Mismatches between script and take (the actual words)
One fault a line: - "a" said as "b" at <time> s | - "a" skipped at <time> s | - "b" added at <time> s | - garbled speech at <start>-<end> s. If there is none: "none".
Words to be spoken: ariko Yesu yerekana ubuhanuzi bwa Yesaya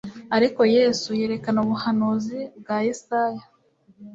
none